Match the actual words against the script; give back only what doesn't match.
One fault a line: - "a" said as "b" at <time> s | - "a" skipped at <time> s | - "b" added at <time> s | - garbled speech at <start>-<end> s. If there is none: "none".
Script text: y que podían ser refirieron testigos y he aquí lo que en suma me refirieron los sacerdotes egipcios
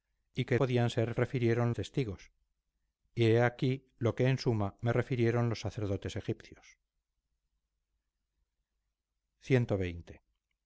none